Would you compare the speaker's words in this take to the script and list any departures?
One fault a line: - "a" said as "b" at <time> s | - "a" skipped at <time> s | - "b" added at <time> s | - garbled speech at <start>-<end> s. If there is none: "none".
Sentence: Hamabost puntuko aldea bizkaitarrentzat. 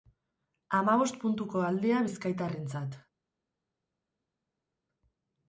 none